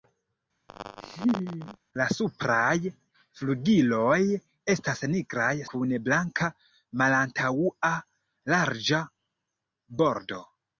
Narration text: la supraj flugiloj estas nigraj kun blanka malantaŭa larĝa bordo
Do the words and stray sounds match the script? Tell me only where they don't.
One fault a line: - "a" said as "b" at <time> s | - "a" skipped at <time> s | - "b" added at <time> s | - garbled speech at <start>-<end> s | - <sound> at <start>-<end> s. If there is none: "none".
- laugh at 0.7-1.8 s